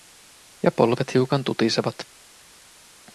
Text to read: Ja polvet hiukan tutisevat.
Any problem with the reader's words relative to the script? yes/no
no